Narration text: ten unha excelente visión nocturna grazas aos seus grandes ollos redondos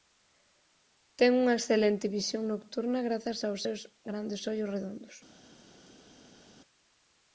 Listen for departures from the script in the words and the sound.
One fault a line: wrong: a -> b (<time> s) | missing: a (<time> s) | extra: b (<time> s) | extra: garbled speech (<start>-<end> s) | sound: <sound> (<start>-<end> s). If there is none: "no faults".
no faults